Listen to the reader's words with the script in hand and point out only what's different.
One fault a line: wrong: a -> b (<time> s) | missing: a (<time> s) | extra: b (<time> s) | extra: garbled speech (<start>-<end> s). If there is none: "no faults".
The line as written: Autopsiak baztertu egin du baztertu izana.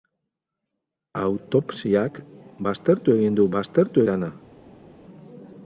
no faults